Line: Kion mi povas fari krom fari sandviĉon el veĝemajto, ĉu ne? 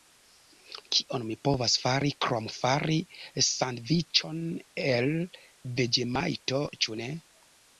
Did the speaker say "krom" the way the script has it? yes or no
yes